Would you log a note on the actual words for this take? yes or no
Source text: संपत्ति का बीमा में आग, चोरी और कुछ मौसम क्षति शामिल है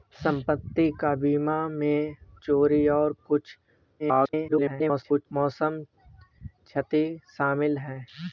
yes